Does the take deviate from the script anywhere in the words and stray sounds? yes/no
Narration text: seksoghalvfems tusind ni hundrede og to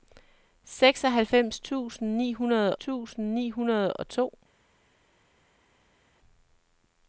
yes